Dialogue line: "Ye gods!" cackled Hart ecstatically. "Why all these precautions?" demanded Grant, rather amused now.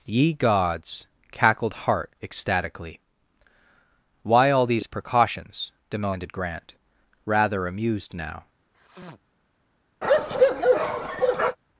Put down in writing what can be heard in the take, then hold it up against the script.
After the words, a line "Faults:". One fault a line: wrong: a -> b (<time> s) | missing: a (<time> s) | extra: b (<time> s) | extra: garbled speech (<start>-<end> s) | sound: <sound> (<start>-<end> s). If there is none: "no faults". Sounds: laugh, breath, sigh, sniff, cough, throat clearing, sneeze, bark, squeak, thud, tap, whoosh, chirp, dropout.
"Ye gods!" cackled Hart ecstatically. "Why all these precautions?" demanded Grant, rather amused now.
Faults:
sound: sniff (8.7-9.2 s)
sound: bark (10.0-11.6 s)